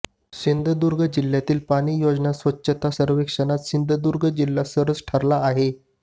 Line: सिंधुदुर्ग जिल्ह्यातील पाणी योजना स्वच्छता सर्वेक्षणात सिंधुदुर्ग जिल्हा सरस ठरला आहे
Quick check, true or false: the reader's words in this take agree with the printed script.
true